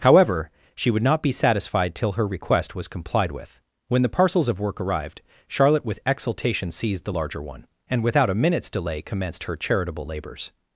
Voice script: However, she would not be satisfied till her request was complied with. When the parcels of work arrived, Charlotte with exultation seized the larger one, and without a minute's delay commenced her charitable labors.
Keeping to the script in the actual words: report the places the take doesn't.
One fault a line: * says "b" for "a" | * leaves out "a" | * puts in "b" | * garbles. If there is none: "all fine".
all fine